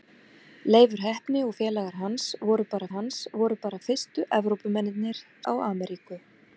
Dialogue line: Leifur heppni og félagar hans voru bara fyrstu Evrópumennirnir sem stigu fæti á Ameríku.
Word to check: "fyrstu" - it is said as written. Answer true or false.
false